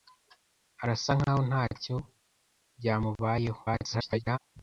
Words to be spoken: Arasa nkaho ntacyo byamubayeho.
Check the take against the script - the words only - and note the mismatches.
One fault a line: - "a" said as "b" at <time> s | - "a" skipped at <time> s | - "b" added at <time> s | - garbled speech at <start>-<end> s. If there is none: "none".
- garbled speech at 3.6-4.4 s